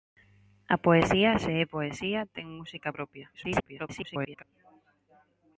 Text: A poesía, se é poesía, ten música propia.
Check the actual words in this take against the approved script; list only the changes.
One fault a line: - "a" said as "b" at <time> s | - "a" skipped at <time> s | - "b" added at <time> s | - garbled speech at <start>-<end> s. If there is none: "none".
- garbled speech at 3.3-4.4 s